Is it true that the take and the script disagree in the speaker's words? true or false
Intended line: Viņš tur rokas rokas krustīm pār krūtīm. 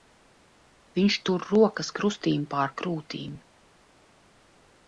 true